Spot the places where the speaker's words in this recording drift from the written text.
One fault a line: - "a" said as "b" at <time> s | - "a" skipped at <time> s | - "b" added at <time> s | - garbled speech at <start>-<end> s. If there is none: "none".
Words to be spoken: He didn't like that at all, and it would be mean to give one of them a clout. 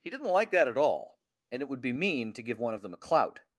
none